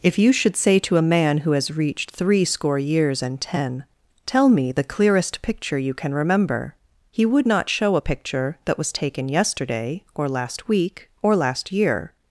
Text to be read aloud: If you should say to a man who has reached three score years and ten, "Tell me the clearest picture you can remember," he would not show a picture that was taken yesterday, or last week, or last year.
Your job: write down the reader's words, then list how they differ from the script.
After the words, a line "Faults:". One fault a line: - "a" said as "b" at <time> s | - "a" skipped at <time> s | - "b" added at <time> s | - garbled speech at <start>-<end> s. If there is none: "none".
If you should say to a man who has reached three score years and ten, "Tell me the clearest picture you can remember," he would not show a picture that was taken yesterday, or last week, or last year.
Faults:
none